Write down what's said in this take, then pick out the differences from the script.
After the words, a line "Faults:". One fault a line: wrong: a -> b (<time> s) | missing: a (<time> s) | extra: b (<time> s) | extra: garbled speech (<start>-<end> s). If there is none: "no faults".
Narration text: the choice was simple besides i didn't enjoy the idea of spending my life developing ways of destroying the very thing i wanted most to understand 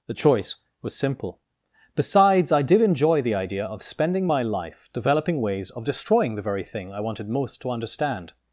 the choice was simple besides i did enjoy the idea of spending my life developing ways of destroying the very thing i wanted most to understand
Faults:
wrong: didn't -> did (2.6 s)